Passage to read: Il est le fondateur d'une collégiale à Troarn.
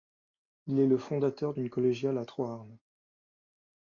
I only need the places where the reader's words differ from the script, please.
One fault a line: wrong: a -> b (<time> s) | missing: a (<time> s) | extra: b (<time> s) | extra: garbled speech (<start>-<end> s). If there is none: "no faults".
no faults